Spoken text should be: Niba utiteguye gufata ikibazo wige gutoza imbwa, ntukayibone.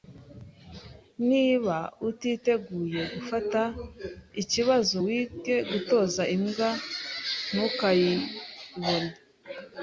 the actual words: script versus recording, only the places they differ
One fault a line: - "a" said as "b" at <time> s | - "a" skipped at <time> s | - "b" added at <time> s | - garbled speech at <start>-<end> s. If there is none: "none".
none